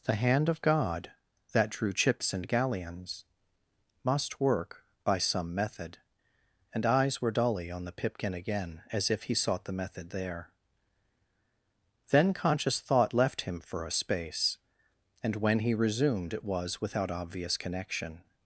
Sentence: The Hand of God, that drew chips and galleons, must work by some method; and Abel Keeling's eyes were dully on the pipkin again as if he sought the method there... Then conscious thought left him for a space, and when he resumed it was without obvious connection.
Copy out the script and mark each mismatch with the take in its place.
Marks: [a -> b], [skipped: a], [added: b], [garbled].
The Hand of God, that drew chips and galleons, must work by some method; and [skipped: Abel Keeling's] eyes were dully on the pipkin again as if he sought the method there... Then conscious thought left him for a space, and when he resumed it was without obvious connection.